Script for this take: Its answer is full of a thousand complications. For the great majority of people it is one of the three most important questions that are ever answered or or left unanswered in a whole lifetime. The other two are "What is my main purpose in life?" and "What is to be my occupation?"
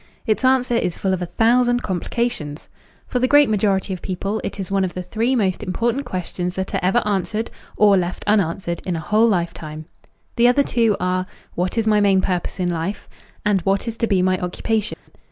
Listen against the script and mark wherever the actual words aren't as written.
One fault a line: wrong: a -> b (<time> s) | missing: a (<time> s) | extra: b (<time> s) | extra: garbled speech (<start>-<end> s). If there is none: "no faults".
missing: or (8.0 s)